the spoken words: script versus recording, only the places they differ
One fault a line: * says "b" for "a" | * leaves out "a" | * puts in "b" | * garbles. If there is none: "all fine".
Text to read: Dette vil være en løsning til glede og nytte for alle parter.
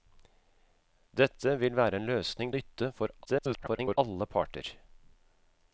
* leaves out "til glede og"
* garbles